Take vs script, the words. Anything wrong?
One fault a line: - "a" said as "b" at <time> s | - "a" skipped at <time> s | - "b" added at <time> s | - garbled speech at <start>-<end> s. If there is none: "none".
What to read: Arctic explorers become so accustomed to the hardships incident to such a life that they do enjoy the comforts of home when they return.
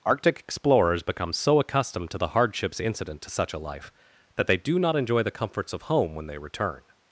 - "not" added at 4.8 s